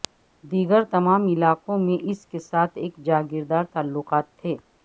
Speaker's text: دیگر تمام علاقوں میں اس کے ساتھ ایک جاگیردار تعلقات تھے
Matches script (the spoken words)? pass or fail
pass